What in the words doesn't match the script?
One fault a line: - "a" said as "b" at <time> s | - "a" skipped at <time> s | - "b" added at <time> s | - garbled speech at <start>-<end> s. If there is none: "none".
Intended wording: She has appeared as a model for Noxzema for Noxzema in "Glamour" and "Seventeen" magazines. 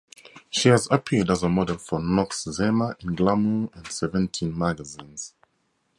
- "for Noxzema" skipped at 3.0 s